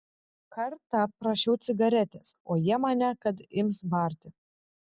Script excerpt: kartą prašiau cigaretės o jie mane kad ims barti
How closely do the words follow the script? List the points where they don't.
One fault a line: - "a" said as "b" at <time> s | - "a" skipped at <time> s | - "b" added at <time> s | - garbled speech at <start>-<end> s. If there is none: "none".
none